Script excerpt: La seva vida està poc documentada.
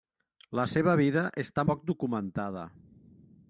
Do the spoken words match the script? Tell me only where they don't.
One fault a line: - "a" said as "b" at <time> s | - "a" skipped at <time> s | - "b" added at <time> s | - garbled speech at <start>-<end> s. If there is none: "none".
none